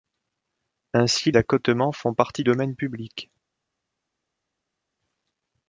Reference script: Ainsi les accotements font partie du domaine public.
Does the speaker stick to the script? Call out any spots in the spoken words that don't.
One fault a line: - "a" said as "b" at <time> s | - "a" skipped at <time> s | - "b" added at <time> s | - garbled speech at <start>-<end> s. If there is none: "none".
- "les" skipped at 1.3 s
- "du" skipped at 2.4 s